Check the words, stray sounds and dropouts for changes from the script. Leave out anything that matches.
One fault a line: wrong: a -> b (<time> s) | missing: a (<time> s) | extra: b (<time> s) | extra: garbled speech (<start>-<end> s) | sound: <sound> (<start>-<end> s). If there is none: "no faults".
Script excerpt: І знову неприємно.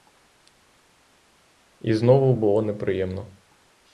extra: було (2.3 s)